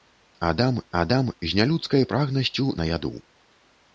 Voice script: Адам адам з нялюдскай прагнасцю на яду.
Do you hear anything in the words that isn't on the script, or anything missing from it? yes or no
no